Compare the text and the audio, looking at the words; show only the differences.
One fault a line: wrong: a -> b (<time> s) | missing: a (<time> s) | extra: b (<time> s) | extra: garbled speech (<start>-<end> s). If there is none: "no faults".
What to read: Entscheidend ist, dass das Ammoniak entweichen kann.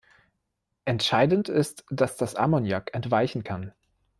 no faults